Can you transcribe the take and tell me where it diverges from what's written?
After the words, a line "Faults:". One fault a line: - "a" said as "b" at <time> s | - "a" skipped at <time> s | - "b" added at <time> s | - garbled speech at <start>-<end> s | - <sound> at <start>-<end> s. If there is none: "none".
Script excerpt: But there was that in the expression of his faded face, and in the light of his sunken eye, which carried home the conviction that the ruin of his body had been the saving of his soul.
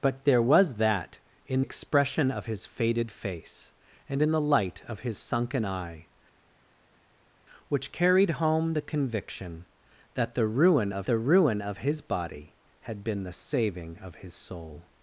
But there was that in expression of his faded face, and in the light of his sunken eye, which carried home the conviction that the ruin of the ruin of his body had been the saving of his soul.
Faults:
- "the" skipped at 1.6 s
- "the ruin of" added at 11.1 s